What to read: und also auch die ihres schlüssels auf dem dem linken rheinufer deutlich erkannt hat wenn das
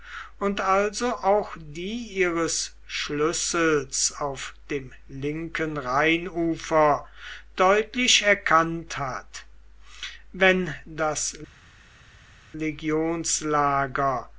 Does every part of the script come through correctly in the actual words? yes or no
no